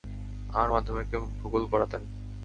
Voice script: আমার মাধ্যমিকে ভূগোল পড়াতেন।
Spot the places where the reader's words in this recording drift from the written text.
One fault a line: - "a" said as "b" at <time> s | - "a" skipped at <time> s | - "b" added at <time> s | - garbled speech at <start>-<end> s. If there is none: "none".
none